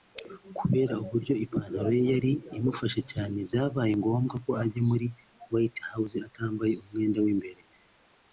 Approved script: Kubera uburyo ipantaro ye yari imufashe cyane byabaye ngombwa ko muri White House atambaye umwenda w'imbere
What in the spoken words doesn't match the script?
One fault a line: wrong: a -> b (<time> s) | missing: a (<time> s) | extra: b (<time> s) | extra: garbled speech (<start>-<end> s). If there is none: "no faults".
extra: ajya (4.6 s)